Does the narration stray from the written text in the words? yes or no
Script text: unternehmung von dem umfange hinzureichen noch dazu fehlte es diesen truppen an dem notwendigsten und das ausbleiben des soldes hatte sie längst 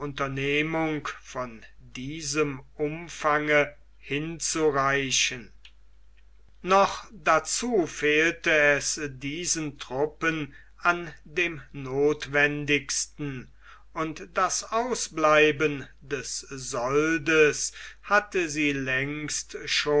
yes